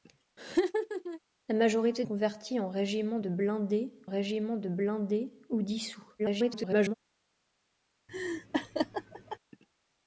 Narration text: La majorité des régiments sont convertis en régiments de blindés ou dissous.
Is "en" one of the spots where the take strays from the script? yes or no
yes